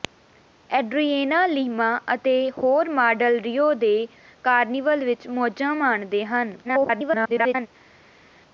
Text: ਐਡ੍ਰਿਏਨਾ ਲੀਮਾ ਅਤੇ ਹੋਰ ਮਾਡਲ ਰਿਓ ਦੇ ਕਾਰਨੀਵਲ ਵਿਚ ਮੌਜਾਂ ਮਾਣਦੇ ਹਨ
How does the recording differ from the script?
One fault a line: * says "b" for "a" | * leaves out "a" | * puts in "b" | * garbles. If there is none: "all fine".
* garbles